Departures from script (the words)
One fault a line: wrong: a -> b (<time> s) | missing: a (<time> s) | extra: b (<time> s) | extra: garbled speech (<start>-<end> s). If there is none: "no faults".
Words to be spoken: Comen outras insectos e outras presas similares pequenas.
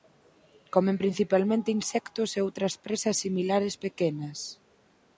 wrong: outras -> principalmente (1.0 s)